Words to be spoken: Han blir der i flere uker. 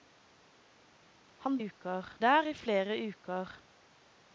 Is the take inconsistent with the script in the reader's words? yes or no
yes